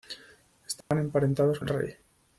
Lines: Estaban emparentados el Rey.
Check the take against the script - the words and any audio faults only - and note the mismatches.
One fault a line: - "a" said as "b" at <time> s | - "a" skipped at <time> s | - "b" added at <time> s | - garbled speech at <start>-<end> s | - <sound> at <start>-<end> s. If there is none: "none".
- dropout at 0.8-0.9 s